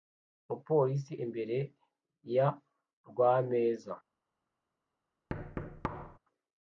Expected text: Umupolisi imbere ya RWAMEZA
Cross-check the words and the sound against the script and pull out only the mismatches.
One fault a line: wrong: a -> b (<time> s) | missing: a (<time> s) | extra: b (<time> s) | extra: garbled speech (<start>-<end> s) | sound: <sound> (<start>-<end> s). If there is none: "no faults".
sound: thud (5.3-6.2 s)